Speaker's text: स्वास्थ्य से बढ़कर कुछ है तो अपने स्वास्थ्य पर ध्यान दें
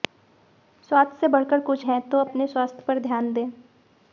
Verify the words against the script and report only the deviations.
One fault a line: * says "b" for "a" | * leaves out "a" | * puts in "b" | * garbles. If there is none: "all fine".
all fine